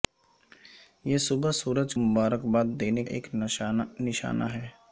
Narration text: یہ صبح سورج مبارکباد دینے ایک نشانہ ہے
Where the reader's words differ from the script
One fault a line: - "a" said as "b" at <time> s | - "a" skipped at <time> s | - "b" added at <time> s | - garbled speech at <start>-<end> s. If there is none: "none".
none